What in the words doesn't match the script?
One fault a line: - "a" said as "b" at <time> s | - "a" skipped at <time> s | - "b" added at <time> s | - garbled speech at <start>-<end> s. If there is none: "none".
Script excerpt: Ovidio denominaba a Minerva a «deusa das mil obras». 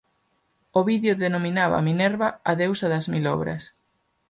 none